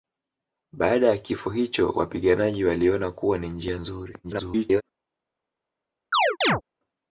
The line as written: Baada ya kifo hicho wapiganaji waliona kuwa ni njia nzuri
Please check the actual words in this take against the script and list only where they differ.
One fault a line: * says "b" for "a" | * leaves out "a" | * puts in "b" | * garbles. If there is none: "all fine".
* garbles